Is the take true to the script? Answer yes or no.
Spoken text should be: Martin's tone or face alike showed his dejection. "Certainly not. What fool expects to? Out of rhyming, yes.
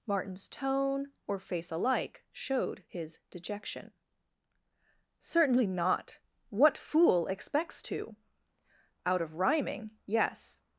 yes